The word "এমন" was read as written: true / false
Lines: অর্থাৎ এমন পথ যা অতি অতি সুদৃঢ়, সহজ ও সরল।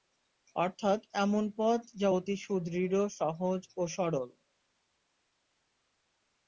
true